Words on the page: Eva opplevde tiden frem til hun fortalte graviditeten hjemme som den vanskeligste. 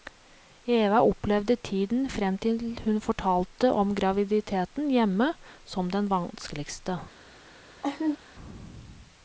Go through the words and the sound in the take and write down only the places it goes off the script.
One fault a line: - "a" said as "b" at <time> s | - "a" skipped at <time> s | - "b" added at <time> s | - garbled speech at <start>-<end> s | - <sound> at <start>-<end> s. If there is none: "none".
- "om" added at 3.8 s
- laugh at 7.8-8.2 s